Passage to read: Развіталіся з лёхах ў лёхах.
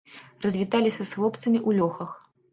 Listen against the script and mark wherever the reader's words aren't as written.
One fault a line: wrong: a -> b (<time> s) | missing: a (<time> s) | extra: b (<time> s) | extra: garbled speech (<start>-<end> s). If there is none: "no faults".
wrong: лёхах -> хлопцамі (1.2 s)